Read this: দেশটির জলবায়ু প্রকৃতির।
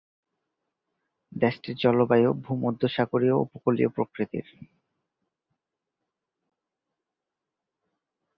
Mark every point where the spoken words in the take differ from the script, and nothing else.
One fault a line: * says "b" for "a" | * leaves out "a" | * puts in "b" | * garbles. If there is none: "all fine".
* puts in "ভূমধ্যসাগরীয় উপকূলীয়"